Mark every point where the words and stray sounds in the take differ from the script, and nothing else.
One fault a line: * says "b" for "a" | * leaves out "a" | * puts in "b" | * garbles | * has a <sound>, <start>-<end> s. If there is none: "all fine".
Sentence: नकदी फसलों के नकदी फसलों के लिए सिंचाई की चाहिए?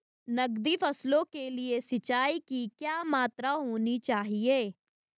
* says "लिए सिंचाई की क्या मात्रा होनी" for "नकदी फसलों के लिए सिंचाई की"